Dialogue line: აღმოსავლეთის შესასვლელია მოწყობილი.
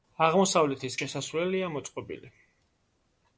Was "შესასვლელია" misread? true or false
false